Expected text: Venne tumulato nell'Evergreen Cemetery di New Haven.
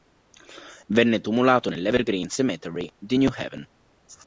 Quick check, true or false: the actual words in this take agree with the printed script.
true